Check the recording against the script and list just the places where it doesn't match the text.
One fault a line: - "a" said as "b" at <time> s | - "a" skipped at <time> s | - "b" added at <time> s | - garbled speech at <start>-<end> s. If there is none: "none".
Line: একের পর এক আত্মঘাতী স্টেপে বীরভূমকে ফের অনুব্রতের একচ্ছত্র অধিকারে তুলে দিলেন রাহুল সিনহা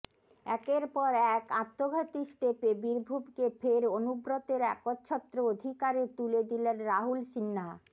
none